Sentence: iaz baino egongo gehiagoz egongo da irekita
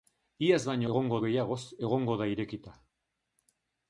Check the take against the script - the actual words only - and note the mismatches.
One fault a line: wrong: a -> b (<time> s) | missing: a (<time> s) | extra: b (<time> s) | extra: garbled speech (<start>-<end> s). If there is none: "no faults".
no faults